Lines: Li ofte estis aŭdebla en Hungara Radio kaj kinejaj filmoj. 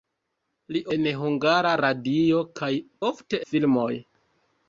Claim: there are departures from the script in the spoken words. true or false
true